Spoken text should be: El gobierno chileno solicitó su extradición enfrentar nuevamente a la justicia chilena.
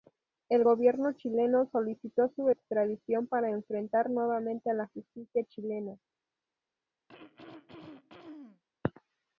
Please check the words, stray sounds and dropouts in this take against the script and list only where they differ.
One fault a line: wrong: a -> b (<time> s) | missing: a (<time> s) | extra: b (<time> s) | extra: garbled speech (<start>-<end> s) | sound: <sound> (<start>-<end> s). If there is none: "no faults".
extra: para (3.3 s)
sound: throat clearing (7.1-8.6 s)